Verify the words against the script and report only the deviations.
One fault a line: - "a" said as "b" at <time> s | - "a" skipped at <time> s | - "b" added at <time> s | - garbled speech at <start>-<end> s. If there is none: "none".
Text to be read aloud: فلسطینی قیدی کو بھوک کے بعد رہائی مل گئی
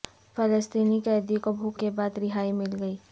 none